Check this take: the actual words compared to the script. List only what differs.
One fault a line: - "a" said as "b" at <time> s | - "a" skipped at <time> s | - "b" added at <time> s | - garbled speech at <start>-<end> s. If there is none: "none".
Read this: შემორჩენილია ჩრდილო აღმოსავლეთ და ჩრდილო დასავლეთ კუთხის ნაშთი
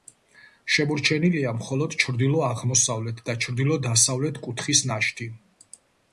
- "მხოლოდ" added at 1.6 s